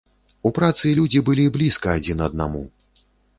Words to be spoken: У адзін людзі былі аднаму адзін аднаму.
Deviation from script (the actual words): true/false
true